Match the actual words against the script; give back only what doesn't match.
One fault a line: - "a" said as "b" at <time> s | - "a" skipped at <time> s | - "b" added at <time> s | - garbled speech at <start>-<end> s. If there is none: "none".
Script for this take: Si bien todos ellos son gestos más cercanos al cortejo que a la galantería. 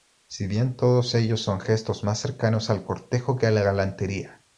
none